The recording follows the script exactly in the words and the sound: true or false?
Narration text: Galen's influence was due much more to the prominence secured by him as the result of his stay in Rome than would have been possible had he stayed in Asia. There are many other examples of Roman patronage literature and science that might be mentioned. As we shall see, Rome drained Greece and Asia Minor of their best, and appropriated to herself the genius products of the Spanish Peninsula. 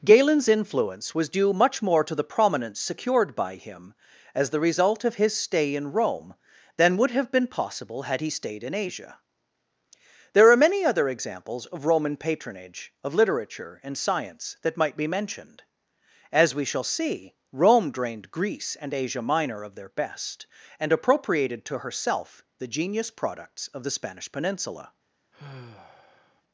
false